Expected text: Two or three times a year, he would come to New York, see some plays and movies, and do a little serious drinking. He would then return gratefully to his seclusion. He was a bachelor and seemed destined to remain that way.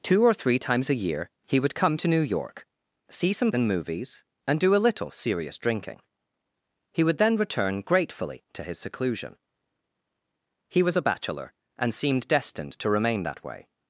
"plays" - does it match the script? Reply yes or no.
no